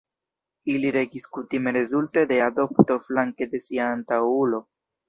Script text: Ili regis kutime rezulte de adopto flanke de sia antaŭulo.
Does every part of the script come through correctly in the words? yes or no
yes